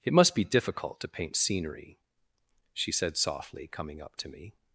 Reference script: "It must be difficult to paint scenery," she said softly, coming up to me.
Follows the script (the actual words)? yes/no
yes